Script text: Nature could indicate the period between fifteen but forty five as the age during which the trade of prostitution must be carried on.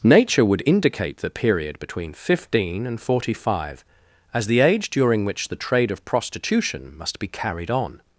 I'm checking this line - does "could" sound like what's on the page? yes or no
no